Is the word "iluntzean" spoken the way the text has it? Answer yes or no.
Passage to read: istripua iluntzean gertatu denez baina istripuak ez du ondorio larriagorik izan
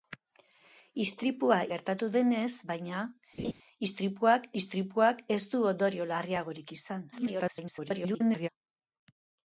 no